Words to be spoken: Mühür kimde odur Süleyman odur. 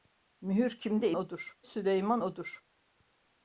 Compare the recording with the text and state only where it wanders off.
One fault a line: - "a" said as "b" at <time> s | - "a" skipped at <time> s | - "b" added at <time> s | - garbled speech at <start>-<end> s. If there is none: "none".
none